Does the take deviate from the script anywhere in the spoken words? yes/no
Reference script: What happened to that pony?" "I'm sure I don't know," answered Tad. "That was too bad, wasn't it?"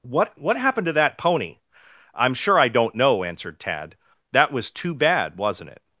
yes